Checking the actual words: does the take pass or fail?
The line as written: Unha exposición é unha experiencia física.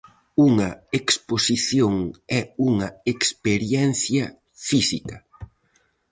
pass